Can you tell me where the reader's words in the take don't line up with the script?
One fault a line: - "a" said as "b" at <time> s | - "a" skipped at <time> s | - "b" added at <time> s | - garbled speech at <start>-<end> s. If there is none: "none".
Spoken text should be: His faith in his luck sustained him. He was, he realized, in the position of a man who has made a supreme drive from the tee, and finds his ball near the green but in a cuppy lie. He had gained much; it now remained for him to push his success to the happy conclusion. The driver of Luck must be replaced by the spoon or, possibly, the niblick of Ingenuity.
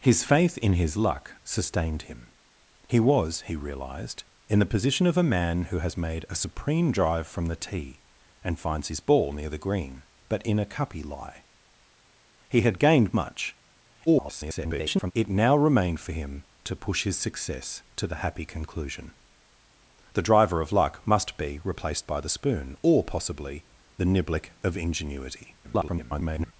- garbled speech at 14.1-15.1 s
- garbled speech at 25.6-26.5 s